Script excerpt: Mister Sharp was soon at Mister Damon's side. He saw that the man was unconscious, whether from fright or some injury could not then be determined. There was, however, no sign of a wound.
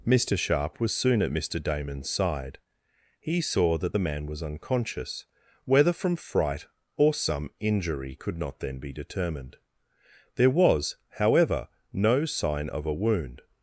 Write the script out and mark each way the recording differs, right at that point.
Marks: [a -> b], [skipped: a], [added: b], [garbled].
Mister Sharp was soon at Mister Damon's side. He saw that the man was unconscious, whether from fright or some injury could not then be determined. There was, however, no sign of a wound.